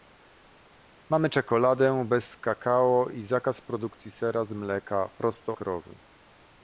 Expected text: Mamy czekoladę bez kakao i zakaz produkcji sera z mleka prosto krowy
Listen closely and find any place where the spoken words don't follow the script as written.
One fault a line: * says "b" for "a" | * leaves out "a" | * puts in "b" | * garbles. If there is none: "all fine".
all fine